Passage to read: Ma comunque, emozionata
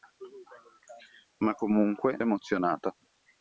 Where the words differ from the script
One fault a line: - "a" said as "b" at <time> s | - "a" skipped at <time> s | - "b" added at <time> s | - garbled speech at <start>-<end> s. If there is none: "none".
none